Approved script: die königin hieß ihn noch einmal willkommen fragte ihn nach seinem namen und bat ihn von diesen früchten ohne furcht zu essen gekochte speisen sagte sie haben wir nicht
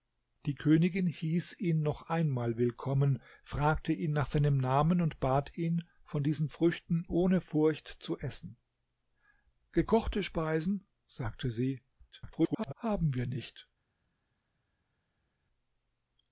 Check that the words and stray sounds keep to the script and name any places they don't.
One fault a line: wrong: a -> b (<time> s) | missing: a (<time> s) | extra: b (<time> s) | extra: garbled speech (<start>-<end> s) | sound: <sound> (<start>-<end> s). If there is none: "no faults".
extra: garbled speech (12.1-12.7 s)